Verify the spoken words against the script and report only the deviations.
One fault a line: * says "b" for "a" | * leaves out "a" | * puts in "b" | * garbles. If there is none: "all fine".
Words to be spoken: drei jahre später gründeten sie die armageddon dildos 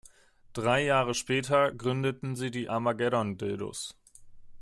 all fine